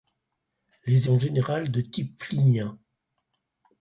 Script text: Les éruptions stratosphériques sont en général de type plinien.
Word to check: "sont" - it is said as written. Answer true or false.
false